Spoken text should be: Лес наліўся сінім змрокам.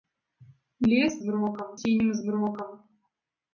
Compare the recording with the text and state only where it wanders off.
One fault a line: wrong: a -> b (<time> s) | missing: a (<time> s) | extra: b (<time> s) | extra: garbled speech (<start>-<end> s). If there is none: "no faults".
wrong: наліўся -> змрокам (1.2 s)